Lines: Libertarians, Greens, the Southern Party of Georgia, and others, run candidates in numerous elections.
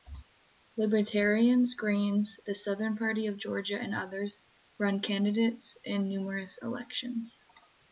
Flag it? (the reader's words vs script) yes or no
no